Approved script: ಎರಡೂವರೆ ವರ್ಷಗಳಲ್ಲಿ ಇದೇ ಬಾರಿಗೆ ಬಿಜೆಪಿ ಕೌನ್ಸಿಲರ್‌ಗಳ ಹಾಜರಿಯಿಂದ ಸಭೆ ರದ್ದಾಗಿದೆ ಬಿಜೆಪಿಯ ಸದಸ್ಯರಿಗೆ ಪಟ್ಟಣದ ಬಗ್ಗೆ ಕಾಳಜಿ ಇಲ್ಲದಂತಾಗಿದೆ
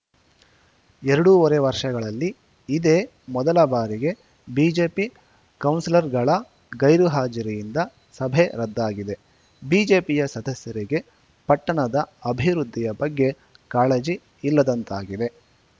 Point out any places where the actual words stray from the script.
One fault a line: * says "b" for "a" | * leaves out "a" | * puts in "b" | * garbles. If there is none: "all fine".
* puts in "ಮೊದಲ"
* puts in "ಗೈರು"
* puts in "ಅಭಿವೃದ್ಧಿಯ"